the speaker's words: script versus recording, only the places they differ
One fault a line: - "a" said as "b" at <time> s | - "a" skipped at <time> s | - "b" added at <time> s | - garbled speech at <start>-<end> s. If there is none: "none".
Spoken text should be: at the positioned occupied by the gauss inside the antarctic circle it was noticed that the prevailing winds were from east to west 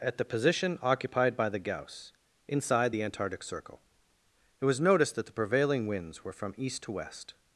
- "positioned" said as "position" at 0.2 s